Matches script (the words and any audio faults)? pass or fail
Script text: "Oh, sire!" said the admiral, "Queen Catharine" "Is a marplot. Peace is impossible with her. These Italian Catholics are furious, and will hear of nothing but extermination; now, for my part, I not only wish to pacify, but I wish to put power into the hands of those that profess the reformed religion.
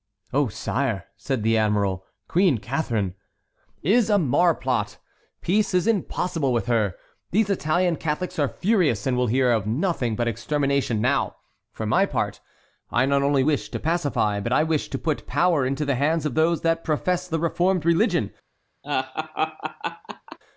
fail